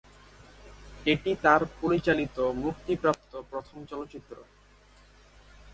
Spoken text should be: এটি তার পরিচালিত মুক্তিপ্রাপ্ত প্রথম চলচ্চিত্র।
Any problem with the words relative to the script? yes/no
no